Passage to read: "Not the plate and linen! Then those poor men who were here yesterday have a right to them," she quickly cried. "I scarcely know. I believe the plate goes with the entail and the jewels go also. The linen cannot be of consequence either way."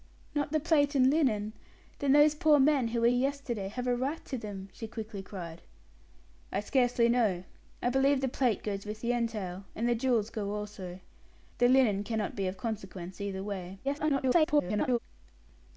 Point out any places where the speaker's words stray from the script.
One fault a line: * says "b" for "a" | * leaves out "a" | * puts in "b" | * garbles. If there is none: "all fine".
* leaves out "here"
* garbles